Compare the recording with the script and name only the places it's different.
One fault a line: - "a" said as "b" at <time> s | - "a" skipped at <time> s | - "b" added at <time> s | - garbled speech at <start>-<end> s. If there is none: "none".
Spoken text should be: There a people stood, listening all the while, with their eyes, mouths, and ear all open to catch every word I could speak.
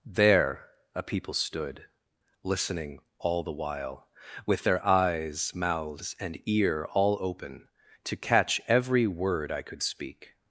none